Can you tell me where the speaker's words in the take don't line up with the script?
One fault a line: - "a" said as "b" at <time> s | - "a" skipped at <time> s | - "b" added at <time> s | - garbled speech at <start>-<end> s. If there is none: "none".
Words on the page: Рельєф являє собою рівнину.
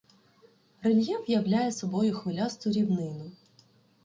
- "хвилясту" added at 2.1 s